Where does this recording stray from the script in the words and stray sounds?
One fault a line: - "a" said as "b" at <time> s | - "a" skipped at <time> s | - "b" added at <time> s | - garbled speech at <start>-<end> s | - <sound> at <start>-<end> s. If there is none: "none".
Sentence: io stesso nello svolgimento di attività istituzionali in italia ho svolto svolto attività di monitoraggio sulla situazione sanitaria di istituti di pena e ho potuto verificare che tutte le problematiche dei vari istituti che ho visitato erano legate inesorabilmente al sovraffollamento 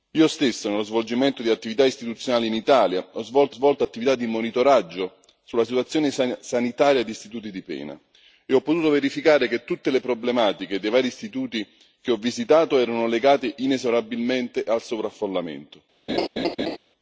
- laugh at 16.1-16.8 s